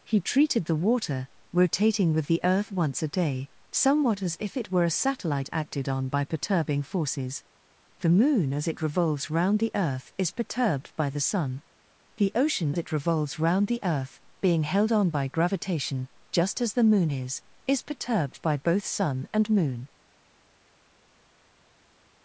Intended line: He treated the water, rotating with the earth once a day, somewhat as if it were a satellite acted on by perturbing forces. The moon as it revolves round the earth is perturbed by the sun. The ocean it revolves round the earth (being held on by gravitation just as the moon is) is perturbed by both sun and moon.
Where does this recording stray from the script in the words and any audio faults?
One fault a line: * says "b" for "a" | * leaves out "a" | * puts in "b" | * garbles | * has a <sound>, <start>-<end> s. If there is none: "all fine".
all fine